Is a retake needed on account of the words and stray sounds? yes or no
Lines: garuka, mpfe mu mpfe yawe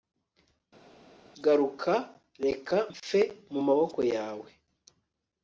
yes